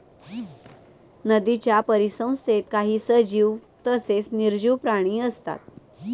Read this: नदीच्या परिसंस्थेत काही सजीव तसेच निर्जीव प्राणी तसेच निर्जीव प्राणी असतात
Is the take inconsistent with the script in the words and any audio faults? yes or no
yes